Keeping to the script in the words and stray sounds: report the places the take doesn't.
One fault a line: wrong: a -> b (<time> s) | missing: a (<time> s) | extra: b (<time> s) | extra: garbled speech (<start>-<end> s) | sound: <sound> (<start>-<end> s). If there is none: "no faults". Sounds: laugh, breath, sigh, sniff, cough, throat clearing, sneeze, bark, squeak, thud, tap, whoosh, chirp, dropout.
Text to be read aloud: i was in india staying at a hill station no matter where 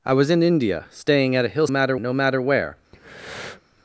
wrong: station -> matter (1.7 s)
sound: breath (2.9-3.6 s)